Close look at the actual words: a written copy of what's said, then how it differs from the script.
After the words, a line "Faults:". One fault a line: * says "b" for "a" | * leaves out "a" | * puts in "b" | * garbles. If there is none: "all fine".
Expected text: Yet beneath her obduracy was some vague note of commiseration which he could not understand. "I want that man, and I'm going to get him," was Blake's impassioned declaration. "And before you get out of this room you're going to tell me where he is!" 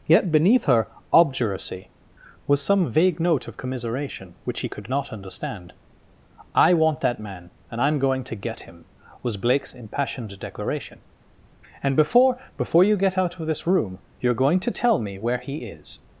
Yet beneath her obduracy was some vague note of commiseration which he could not understand. "I want that man, and I'm going to get him," was Blake's impassioned declaration. "And before before you get out of this room you're going to tell me where he is!"
Faults:
* puts in "before"